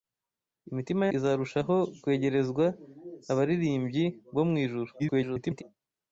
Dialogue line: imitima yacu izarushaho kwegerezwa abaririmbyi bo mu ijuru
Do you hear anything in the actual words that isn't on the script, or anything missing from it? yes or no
yes